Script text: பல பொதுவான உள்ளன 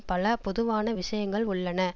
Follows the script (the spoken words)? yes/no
no